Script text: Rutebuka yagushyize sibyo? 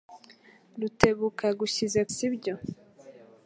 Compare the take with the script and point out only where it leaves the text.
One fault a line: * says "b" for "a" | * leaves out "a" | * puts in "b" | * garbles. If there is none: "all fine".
all fine